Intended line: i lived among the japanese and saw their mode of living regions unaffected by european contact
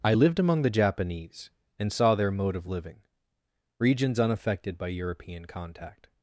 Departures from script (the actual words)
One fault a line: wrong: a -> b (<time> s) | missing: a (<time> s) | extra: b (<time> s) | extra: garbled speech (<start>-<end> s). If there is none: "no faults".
no faults